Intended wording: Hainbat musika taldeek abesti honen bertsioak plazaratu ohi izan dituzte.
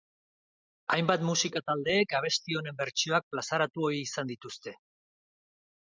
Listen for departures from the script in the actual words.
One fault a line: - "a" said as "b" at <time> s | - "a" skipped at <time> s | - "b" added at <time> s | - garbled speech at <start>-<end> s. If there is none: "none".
none